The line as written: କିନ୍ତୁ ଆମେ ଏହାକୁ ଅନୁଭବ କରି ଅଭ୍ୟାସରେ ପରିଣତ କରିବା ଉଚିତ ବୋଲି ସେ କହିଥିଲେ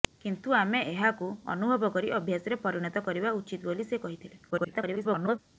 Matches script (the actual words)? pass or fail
fail